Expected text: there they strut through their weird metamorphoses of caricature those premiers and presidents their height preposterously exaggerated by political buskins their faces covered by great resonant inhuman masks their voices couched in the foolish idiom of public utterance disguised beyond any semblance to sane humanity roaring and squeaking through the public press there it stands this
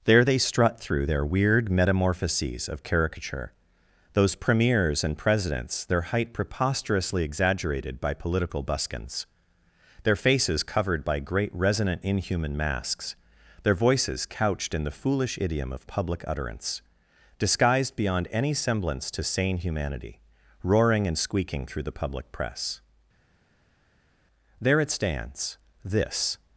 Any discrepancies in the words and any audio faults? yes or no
no